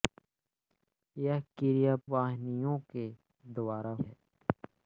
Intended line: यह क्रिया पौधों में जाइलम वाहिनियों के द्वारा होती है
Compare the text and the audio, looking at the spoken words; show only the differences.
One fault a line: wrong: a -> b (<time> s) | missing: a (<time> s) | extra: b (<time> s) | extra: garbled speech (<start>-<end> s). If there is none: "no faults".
missing: पौधों में जाइलम (1.9 s)
missing: होती (3.9 s)